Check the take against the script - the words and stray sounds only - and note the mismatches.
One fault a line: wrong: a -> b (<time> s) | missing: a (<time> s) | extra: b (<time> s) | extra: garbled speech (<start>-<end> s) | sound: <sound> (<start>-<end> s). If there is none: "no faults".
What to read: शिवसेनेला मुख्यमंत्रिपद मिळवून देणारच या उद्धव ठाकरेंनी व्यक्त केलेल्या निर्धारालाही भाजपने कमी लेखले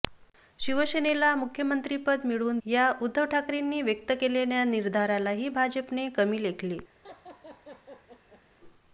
missing: देणारच (2.6 s)
sound: laugh (7.0-8.4 s)